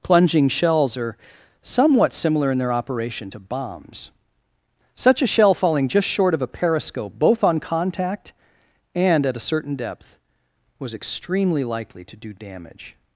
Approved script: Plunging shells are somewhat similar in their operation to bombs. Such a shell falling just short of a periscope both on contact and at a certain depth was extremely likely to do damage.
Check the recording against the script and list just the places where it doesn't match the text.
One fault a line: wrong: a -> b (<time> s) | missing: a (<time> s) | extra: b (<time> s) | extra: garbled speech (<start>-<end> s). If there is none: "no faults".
no faults